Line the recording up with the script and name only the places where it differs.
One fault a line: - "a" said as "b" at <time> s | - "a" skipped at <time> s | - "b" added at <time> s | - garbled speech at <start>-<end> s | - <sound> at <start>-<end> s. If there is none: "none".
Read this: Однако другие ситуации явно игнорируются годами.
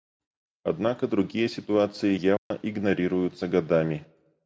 - dropout at 2.4-2.5 s